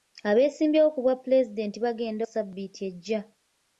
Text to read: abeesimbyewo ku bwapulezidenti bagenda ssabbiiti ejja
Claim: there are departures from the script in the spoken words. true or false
false